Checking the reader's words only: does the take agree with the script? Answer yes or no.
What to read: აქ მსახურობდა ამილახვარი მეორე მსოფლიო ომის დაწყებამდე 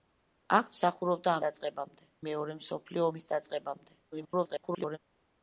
no